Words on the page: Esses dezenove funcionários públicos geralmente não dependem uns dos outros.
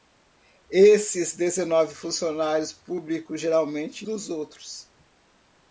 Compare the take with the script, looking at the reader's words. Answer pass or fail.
fail